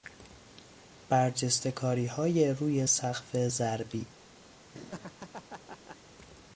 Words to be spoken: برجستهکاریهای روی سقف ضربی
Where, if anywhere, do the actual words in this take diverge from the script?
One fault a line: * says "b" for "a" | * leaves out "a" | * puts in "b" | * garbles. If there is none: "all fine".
all fine